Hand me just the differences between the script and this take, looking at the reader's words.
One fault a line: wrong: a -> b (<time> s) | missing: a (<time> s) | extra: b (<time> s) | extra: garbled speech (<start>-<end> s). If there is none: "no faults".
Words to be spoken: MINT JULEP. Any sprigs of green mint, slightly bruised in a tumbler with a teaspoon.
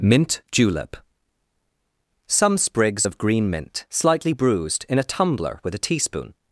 wrong: Any -> Some (2.2 s)